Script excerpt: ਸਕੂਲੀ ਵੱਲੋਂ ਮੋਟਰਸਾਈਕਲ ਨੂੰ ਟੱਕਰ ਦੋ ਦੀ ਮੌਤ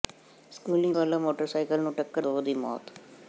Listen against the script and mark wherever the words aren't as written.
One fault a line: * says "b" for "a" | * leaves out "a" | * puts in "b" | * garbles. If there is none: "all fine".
all fine